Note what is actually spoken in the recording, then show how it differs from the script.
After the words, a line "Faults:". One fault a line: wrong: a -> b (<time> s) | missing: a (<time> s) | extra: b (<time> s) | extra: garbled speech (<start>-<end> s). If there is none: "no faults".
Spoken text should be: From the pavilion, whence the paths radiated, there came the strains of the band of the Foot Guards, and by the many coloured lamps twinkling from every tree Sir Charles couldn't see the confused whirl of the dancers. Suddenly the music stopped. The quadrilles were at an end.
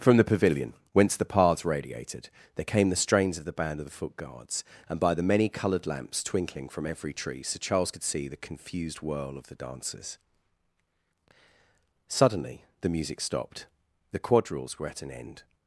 From the pavilion, whence the paths radiated, there came the strains of the band of the Foot Guards, and by the many coloured lamps twinkling from every tree Sir Charles could see the confused whirl of the dancers. Suddenly the music stopped. The quadrilles were at an end.
Faults:
wrong: couldn't -> could (7.9 s)